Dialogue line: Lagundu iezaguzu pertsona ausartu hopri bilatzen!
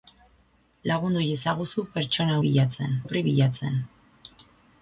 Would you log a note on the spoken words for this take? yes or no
yes